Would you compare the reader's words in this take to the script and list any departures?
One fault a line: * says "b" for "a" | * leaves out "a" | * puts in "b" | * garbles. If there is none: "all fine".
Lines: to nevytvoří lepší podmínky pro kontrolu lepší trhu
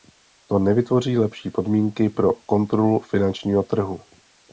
* says "finančního" for "lepší"